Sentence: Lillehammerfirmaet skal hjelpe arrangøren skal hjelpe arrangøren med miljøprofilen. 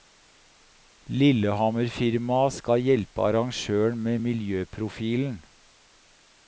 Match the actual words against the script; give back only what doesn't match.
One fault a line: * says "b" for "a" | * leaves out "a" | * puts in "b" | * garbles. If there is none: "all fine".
* leaves out "skal hjelpe arrangøren"